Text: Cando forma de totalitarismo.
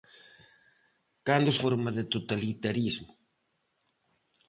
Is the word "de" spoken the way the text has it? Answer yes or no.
yes